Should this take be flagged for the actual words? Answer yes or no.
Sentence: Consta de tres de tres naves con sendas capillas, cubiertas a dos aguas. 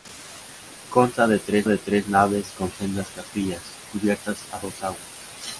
no